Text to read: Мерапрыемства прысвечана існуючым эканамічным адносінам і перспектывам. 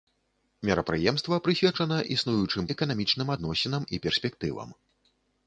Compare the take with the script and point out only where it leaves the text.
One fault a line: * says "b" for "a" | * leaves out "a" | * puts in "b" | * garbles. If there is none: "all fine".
all fine